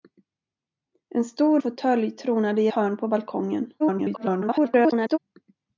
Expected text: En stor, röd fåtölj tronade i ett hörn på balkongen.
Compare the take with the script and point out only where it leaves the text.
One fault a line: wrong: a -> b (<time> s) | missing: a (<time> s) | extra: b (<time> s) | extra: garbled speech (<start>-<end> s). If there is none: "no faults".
missing: röd (1.6 s)
missing: ett (2.7 s)
extra: garbled speech (3.8-5.2 s)